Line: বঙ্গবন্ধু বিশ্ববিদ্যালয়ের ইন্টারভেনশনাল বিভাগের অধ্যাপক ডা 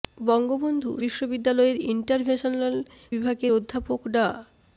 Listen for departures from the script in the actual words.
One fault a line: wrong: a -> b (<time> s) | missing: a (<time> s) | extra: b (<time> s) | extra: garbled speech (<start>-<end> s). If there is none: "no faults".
no faults